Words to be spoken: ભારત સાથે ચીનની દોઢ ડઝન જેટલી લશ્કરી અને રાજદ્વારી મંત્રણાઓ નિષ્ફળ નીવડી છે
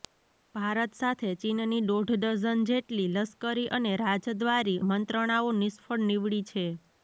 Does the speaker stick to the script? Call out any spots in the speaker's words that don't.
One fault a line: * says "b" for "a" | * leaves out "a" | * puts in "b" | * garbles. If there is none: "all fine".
all fine